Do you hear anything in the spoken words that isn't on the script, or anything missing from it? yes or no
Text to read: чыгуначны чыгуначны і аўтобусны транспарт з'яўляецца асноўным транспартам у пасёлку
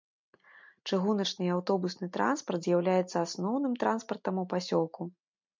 yes